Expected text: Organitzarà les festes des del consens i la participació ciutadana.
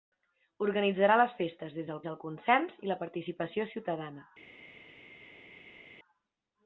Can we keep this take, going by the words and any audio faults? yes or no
no